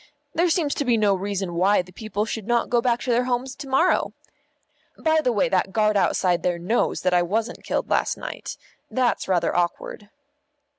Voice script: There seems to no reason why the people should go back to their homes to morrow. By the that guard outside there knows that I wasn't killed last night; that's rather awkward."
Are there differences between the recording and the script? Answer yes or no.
yes